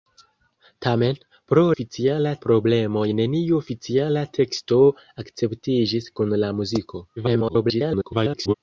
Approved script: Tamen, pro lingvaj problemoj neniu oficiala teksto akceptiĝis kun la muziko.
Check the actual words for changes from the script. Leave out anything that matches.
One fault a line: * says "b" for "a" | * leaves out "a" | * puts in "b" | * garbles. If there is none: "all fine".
* says "oficiala" for "lingvaj"
* garbles